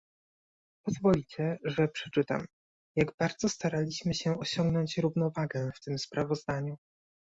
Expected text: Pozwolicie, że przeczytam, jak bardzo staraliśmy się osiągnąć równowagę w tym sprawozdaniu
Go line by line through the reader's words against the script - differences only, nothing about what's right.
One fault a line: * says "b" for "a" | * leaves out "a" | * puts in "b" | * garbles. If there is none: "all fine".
all fine